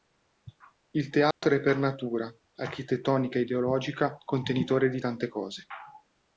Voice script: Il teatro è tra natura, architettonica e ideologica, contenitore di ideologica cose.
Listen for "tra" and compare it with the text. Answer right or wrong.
wrong